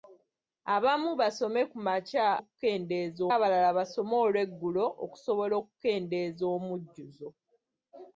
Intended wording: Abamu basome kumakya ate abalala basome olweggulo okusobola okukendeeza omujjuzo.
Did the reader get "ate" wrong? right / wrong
wrong